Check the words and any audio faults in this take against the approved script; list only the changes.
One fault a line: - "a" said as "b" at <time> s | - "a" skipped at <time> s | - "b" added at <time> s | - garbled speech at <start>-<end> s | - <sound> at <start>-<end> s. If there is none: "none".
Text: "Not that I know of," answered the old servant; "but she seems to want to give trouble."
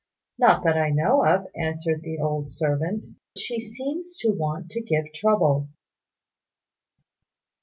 - "but" skipped at 3.0 s